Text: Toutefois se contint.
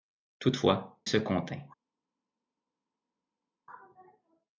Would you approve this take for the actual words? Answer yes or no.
yes